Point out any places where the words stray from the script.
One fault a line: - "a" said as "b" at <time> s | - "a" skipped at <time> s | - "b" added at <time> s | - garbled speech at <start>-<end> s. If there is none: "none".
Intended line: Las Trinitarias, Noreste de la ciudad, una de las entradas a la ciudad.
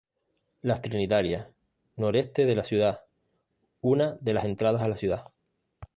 none